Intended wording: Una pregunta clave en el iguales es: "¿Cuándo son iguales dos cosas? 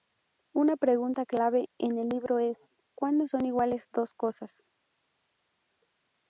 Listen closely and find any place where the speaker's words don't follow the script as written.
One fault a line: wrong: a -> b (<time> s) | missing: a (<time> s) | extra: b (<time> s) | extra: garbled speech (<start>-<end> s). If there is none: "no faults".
wrong: iguales -> libro (2.1 s)